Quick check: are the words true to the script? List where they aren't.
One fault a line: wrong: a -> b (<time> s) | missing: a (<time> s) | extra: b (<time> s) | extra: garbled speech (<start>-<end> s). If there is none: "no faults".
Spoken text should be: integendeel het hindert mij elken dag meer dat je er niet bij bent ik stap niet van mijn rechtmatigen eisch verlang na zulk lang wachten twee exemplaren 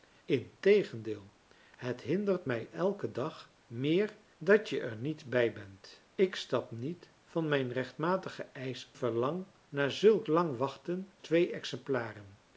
no faults